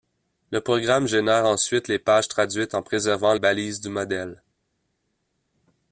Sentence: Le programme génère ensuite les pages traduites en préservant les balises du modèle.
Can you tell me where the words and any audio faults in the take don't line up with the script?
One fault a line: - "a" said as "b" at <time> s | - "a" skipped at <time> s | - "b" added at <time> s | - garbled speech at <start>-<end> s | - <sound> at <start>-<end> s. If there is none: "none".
- "les" skipped at 3.4 s